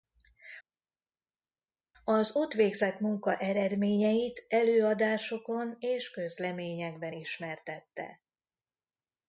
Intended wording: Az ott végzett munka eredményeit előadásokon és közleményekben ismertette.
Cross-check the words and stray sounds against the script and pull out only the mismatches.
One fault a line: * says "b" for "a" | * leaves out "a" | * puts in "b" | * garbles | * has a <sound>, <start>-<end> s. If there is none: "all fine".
all fine